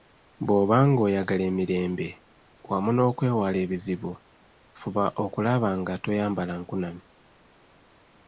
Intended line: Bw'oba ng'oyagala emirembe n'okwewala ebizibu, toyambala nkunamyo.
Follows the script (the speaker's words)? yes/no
no